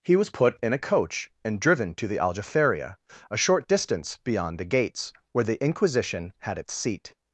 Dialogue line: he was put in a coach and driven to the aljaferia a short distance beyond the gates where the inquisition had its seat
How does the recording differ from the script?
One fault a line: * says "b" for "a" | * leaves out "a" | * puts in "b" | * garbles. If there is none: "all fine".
all fine